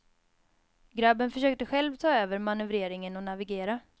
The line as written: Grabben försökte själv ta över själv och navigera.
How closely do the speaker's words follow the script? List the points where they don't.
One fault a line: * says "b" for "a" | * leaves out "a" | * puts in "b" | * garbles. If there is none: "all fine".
* says "manövreringen" for "själv"